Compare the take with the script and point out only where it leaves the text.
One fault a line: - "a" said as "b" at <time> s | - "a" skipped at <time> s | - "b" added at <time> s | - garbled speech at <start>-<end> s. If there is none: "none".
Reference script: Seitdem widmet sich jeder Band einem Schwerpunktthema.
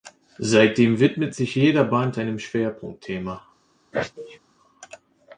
none